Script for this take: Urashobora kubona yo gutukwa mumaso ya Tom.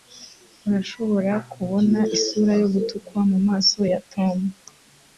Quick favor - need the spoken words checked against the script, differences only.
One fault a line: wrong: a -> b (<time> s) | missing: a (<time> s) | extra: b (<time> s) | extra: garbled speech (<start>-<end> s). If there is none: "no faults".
extra: isura (2.2 s)